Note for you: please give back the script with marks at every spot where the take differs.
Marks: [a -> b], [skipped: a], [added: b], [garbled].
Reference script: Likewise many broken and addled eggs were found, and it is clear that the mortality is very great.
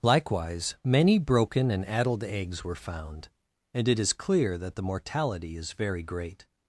Likewise many broken and addled eggs were found, and it is clear that the mortality is very great.